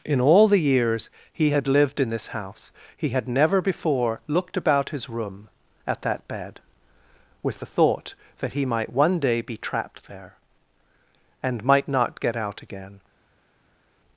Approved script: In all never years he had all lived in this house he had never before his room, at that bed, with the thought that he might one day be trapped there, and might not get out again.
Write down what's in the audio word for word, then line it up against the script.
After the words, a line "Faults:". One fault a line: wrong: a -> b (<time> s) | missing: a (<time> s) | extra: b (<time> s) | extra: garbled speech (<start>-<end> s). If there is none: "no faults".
In all the years he had lived in this house he had never before looked about his room, at that bed, with the thought that he might one day be trapped there, and might not get out again.
Faults:
wrong: never -> the (0.5 s)
missing: all (1.7 s)
extra: looked about (4.3 s)